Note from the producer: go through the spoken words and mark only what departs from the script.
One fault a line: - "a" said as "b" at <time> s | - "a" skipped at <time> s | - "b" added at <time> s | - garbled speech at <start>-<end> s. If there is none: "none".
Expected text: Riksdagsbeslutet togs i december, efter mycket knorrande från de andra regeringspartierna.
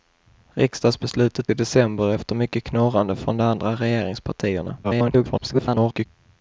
- "togs" skipped at 1.5 s
- garbled speech at 4.8-6.1 s